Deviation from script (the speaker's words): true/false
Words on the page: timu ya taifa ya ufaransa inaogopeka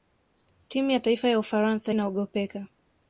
false